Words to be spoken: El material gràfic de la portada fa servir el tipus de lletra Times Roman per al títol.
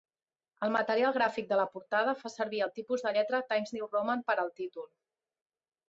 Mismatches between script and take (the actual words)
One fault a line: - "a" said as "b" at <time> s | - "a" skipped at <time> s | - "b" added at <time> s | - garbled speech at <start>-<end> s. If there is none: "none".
- "New" added at 3.8 s